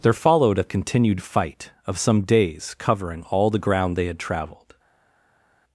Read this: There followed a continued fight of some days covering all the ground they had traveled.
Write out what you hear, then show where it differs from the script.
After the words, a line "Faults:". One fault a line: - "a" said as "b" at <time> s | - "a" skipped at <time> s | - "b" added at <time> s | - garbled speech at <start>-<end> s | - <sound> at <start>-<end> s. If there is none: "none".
There followed a continued fight of some days covering all the ground they had traveled.
Faults:
none